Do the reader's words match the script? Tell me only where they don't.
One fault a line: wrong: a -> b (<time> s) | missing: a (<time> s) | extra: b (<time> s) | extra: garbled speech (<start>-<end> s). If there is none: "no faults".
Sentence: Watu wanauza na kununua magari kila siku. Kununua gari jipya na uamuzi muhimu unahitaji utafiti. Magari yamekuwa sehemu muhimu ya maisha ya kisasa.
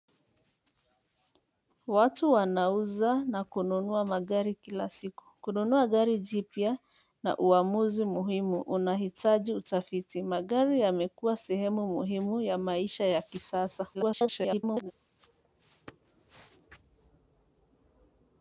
extra: garbled speech (13.9-14.9 s)